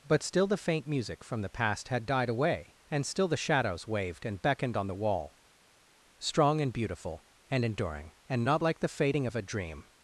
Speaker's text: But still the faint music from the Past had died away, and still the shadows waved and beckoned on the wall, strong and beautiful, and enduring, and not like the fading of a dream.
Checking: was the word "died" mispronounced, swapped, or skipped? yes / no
no